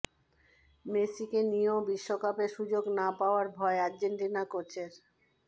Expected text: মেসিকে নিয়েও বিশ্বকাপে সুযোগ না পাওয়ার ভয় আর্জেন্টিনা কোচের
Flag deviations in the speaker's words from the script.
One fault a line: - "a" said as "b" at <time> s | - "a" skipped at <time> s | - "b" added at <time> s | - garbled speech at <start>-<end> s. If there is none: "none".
none